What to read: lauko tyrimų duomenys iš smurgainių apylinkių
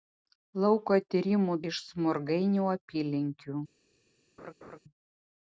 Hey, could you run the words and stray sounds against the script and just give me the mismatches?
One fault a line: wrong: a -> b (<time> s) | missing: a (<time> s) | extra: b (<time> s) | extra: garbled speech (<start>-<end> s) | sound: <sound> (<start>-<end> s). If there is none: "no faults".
missing: duomenys (1.6 s)
sound: laugh (4.4-4.8 s)